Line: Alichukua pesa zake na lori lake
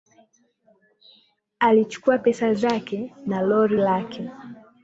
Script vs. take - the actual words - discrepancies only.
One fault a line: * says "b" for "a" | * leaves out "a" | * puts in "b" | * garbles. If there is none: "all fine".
all fine